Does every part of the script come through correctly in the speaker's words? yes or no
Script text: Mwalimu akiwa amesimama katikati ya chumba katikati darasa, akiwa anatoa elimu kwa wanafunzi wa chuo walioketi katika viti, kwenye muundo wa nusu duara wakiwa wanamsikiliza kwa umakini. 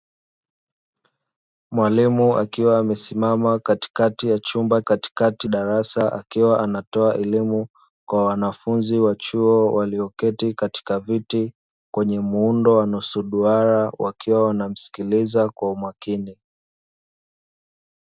yes